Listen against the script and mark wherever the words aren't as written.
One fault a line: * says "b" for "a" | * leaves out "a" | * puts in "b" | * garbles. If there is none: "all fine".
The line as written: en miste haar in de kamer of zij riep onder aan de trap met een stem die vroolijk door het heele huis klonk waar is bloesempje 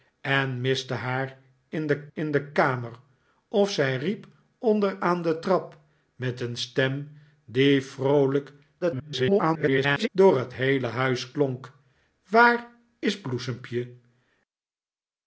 * puts in "in de"
* garbles